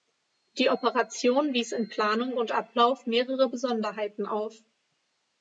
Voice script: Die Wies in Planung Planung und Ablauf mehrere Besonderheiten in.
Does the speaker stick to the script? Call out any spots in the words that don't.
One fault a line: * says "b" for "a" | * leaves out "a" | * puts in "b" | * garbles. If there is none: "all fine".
* puts in "Operation"
* leaves out "Planung"
* says "auf" for "in"